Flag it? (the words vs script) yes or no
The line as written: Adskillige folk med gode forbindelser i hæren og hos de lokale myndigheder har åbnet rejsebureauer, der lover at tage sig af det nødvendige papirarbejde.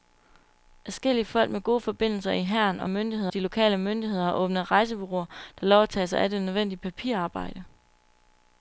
yes